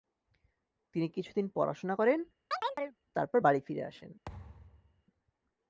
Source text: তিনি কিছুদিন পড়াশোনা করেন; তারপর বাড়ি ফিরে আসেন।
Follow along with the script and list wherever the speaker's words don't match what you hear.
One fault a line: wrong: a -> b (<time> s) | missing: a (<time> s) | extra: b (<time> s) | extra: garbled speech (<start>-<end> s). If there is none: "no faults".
no faults